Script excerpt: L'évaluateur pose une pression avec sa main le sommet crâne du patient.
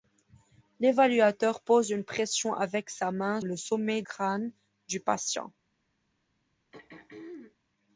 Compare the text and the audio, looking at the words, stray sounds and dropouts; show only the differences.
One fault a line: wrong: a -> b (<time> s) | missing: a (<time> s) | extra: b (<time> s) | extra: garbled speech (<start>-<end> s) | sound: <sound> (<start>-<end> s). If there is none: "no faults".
sound: throat clearing (6.7-7.6 s)